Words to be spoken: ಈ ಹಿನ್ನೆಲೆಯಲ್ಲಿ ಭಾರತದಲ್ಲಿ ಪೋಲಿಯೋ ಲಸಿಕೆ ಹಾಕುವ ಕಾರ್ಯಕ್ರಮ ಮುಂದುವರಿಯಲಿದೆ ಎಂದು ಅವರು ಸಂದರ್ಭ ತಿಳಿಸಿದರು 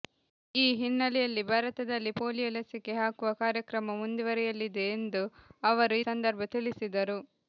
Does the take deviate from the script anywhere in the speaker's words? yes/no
no